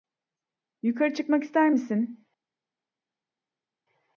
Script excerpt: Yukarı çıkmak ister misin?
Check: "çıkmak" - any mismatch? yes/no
no